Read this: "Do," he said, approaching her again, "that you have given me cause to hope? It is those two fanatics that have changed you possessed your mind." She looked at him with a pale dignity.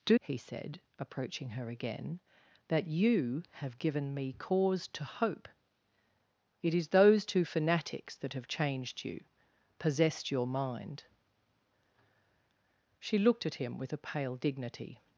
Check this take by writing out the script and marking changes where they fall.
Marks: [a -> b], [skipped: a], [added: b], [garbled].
"Do," he said, approaching her again, "that you have given me cause to hope? It is those two fanatics that have changed you possessed your mind." She looked at him with a pale dignity.